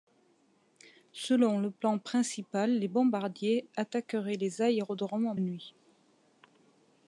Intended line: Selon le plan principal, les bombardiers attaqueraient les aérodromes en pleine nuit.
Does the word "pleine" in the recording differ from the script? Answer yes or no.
yes